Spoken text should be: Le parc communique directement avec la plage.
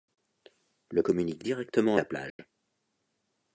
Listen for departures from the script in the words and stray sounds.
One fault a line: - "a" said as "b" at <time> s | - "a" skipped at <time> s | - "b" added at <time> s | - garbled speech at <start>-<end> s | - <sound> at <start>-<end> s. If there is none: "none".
- "parc" skipped at 1.0 s
- "avec" skipped at 1.9 s
- dropout at 2.3-2.4 s